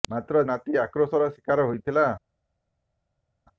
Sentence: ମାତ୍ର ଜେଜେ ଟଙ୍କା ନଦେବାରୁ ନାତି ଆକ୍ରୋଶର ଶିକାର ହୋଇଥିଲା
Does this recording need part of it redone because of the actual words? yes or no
yes